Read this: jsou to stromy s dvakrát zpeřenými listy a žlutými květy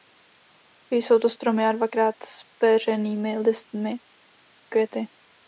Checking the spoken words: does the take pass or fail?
fail